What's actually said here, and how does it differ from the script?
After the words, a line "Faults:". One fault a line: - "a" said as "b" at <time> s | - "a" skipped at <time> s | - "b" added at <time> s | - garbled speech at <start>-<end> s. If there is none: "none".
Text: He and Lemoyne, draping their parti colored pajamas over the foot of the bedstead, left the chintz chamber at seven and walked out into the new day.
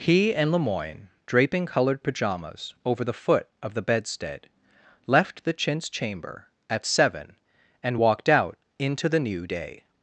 He and Lemoyne, draping colored pajamas over the foot of the bedstead, left the chintz chamber at seven and walked out into the new day.
Faults:
- "their parti" skipped at 1.7 s